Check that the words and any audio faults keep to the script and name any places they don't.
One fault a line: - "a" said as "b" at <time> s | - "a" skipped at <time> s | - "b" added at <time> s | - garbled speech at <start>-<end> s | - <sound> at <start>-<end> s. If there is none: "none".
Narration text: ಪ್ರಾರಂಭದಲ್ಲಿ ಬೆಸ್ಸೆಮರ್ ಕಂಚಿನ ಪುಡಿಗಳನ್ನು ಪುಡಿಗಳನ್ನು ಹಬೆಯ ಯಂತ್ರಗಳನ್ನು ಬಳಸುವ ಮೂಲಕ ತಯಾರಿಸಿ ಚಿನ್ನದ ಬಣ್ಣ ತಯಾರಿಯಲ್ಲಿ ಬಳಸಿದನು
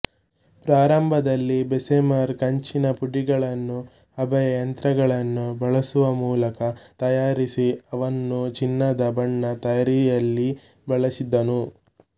- "ಪುಡಿಗಳನ್ನು" skipped at 3.8 s
- "ಅವನ್ನು" added at 7.9 s